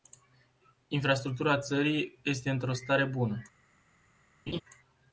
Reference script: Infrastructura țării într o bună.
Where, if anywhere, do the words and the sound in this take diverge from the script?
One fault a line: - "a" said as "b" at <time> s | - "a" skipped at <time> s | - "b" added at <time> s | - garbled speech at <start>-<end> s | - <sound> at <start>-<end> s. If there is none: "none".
- "este" added at 2.2 s
- "stare" added at 2.7 s
- laugh at 4.5-4.6 s